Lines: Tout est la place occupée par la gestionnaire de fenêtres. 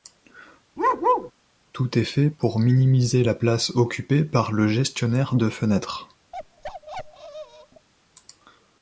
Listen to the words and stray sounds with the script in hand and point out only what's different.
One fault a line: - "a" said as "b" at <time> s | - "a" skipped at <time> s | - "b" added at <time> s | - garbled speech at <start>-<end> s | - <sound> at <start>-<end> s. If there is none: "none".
- bark at 0.8-1.3 s
- "fait pour minimiser" added at 2.0 s
- "la" said as "le" at 4.5 s
- bark at 6.3-7.9 s